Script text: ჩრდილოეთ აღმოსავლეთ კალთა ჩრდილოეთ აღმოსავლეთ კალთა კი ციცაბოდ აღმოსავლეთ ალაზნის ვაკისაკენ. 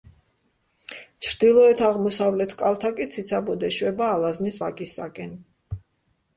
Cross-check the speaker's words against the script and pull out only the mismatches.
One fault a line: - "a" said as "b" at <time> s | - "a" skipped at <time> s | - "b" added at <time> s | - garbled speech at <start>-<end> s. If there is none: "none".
- "ჩრდილოეთ აღმოსავლეთ კალთა" skipped at 2.9 s
- "აღმოსავლეთ" said as "ეშვება" at 3.7 s